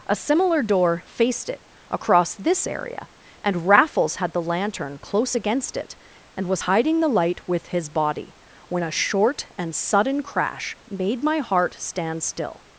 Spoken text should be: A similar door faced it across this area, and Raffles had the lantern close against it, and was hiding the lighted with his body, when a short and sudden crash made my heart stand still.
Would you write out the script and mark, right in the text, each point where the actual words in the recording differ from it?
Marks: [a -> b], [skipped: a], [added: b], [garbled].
A similar door faced it across this area, and Raffles had the lantern close against it, and was hiding the [lighted -> light] with his body, when a short and sudden crash made my heart stand still.